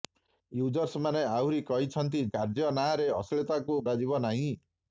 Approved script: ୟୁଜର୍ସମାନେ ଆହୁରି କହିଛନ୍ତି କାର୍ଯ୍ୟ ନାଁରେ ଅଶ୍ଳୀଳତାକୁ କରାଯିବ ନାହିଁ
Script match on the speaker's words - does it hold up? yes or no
yes